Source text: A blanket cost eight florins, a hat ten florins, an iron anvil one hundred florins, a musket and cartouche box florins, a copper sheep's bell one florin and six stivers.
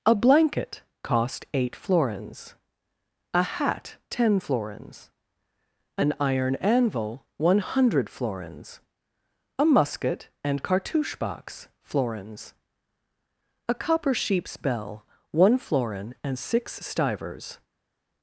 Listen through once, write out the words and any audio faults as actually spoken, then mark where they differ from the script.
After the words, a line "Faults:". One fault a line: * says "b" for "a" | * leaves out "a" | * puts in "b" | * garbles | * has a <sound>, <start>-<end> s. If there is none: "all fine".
A blanket cost eight florins, a hat ten florins, an iron anvil one hundred florins, a musket and cartouche box florins, a copper sheep's bell one florin and six stivers.
Faults:
all fine